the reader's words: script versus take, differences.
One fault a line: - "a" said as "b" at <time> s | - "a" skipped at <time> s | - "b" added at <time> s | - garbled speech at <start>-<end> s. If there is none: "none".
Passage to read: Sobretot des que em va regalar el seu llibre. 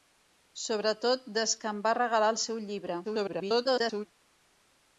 - garbled speech at 3.0-4.1 s